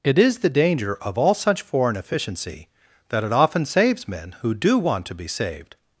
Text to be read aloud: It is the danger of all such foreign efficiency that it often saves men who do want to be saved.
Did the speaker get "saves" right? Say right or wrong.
right